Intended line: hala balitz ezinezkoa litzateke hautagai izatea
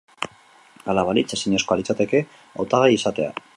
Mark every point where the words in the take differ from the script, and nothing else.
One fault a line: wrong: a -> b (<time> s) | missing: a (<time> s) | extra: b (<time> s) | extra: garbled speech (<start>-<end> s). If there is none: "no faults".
no faults